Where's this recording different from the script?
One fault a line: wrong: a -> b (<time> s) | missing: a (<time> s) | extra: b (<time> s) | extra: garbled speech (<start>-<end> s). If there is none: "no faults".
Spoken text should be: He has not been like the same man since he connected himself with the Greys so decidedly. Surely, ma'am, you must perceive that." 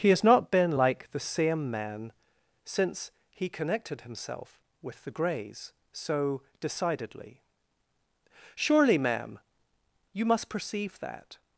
no faults